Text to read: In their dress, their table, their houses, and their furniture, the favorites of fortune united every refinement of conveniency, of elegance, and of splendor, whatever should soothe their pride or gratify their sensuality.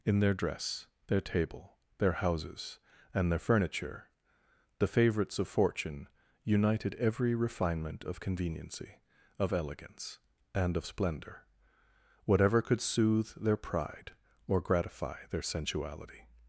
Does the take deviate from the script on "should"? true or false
true